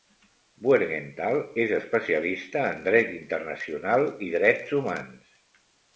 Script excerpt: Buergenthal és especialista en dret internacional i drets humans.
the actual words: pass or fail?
pass